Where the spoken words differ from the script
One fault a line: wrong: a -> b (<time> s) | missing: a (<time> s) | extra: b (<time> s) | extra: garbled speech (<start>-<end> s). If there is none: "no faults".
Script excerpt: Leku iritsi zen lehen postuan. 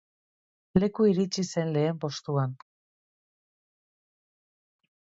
no faults